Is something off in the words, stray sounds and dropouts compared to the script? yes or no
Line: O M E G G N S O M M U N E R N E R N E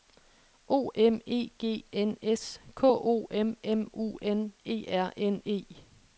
yes